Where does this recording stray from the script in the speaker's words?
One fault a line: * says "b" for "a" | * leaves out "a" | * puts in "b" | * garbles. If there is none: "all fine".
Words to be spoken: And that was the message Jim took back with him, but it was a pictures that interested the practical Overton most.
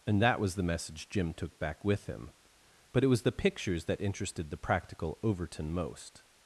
* says "the" for "a"